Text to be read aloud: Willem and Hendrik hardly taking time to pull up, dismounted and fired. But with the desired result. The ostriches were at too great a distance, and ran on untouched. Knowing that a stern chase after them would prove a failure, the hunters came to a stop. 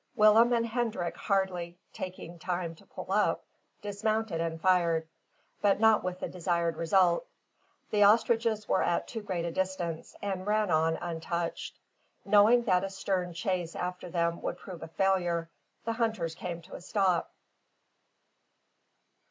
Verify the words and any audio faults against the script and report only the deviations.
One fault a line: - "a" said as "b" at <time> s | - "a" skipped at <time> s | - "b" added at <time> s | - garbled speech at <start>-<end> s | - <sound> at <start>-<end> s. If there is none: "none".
- "not" added at 5.8 s